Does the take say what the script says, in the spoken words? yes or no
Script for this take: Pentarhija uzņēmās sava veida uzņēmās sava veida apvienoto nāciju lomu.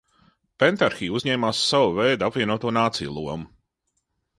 no